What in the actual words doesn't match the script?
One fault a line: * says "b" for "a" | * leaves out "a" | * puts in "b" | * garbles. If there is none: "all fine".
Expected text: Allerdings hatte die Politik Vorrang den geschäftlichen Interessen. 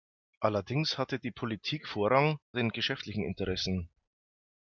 all fine